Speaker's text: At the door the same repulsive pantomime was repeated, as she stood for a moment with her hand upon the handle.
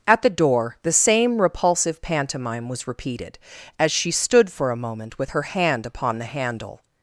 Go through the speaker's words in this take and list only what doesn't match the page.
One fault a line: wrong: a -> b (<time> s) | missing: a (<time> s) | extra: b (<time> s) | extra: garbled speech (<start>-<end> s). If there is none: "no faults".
no faults